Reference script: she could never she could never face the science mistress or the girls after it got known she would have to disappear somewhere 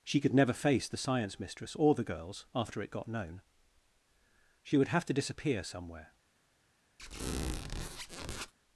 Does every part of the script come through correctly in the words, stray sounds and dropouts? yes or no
no